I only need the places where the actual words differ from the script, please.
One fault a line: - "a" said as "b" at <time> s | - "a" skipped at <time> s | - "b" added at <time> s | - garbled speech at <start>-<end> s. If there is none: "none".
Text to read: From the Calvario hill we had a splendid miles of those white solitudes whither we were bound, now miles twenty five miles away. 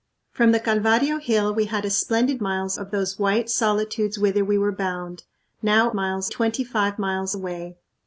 none